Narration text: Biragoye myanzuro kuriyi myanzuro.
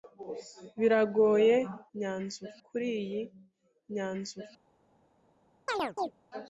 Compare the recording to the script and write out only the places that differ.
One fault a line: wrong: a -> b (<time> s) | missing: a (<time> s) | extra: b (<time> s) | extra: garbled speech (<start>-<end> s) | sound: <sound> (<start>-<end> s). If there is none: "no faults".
sound: chirp (5.7-6.1 s)